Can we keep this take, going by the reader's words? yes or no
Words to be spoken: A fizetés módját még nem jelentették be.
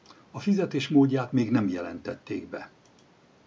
yes